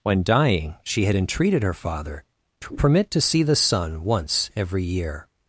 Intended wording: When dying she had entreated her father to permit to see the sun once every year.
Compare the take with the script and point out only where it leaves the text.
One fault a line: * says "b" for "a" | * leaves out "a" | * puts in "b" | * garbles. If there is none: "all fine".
all fine